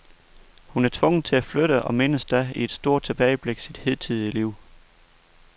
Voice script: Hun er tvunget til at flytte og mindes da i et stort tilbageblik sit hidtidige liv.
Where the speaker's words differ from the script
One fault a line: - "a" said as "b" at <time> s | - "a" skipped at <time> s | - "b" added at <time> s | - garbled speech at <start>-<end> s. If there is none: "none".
none